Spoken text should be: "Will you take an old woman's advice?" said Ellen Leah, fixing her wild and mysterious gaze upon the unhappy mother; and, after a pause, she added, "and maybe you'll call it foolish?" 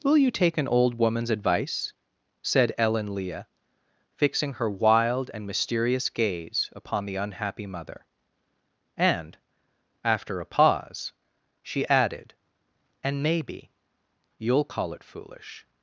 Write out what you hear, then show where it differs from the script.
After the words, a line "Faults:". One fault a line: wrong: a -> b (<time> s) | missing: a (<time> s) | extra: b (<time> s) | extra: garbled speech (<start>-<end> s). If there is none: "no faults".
"Will you take an old woman's advice?" said Ellen Leah, fixing her wild and mysterious gaze upon the unhappy mother; and, after a pause, she added, "and maybe you'll call it foolish?"
Faults:
no faults